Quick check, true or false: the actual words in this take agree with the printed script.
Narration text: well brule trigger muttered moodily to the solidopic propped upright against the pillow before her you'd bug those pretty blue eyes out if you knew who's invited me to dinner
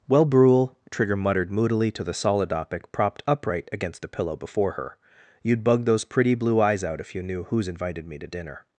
true